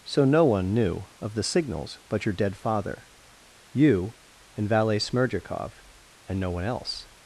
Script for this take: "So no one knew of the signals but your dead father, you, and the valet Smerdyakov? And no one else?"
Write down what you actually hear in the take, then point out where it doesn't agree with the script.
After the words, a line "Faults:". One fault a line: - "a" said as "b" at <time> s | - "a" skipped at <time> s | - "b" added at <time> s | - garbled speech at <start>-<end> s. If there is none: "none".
"So no one knew of the signals but your dead father, you, and valet Smerdyakov? And no one else?"
Faults:
- "the" skipped at 4.7 s